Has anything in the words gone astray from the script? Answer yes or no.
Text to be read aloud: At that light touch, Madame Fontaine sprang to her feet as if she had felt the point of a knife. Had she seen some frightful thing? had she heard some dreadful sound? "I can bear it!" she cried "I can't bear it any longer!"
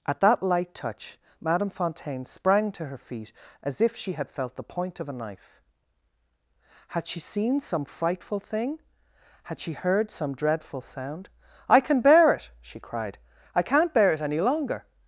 no